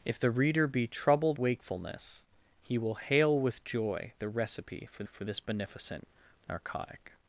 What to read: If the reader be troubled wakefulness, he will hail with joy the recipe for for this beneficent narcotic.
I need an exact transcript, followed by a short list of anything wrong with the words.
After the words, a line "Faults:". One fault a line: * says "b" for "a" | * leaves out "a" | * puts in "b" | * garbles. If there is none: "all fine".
If the reader be troubled wakefulness, he will hail with joy the recipe for for this beneficent narcotic.
Faults:
all fine